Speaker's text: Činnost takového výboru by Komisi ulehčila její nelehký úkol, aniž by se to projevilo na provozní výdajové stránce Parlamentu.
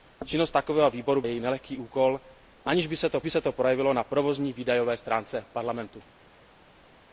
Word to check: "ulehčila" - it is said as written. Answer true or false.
false